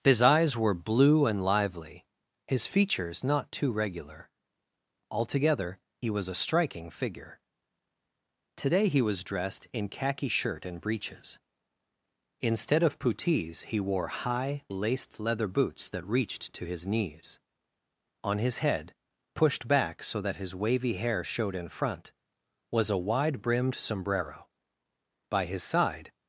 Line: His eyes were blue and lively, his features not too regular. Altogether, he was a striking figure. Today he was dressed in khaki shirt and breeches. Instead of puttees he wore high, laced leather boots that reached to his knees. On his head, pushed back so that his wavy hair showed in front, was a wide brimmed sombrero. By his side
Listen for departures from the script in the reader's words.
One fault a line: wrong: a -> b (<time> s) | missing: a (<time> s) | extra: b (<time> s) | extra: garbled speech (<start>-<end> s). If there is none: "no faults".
no faults